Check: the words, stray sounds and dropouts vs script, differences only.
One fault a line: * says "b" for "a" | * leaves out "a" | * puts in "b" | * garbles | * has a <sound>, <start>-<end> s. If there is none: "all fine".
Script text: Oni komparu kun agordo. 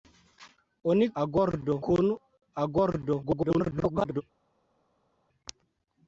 * says "agordo" for "komparu"
* garbles